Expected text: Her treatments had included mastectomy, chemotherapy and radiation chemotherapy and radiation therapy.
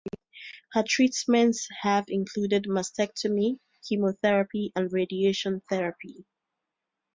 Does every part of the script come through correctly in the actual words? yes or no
no